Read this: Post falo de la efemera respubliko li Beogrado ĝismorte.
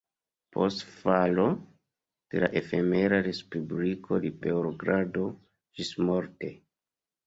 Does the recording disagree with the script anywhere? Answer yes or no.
no